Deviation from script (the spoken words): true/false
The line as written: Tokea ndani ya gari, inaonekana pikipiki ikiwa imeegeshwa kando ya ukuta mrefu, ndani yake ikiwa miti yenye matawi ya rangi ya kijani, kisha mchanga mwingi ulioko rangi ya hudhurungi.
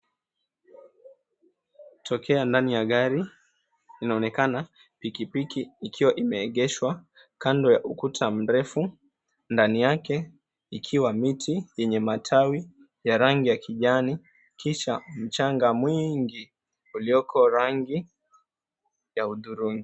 false